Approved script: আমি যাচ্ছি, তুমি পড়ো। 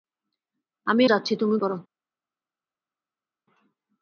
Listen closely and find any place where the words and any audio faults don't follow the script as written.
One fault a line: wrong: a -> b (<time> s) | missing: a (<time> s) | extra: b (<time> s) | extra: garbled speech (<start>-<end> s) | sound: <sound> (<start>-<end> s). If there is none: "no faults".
no faults